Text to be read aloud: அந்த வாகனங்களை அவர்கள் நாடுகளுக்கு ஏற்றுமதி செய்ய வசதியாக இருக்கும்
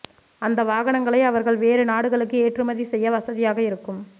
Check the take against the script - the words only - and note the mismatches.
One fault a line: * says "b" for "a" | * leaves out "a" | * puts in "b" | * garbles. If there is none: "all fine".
* puts in "வேறு"